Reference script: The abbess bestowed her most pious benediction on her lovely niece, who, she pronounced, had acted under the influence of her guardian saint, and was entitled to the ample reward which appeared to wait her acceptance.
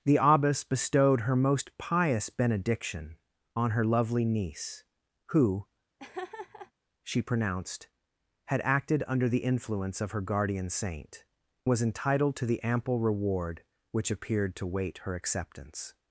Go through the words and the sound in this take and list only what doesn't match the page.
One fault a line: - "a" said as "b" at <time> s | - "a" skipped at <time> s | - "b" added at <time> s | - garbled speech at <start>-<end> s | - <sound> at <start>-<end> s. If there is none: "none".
- laugh at 6.0-6.7 s
- "and" skipped at 11.2 s